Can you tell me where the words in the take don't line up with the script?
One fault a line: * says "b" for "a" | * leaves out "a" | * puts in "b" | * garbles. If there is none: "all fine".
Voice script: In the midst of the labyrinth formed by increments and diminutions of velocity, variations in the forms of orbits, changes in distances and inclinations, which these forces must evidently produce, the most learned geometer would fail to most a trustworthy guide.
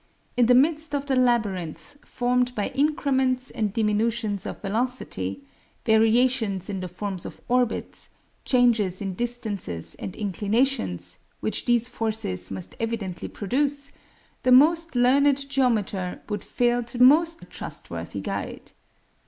all fine